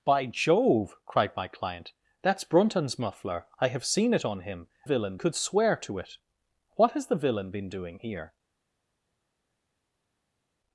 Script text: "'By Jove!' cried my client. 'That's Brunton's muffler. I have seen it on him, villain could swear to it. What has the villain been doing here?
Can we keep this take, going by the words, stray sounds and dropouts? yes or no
yes